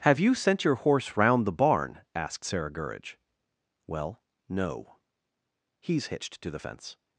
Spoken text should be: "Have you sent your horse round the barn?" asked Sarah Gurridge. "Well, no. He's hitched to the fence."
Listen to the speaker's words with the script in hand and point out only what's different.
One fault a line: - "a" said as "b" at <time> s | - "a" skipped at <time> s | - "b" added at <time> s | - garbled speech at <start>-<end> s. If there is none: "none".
none